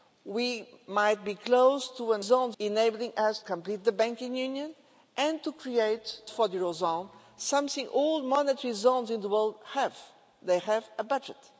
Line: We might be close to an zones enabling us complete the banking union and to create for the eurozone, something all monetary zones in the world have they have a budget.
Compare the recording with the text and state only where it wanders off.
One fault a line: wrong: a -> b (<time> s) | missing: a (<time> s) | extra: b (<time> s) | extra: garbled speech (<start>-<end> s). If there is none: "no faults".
no faults